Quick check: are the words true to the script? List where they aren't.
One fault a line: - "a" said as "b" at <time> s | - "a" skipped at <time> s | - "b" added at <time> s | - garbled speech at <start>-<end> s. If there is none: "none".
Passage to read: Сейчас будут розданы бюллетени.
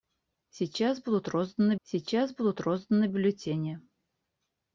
- "сейчас будут розданы" added at 1.8 s